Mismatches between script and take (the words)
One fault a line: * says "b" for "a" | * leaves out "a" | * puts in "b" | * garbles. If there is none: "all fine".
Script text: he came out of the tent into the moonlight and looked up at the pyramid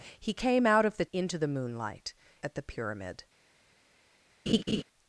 * leaves out "tent"
* leaves out "and looked up"